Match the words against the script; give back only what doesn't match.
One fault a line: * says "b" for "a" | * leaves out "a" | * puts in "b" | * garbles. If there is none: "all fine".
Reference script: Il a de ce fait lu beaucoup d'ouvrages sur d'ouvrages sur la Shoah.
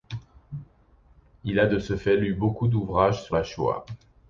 * leaves out "d'ouvrages sur"